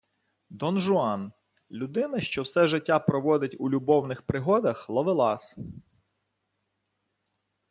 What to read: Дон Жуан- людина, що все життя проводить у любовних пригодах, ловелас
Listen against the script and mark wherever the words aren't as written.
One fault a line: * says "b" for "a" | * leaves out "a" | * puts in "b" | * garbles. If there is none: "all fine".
all fine